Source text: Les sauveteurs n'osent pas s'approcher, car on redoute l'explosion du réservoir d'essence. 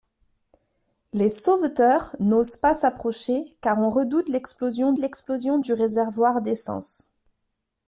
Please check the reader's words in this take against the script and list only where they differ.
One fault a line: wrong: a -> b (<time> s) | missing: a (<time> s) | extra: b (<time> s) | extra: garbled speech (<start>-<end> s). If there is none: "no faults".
extra: l'explosion (5.0 s)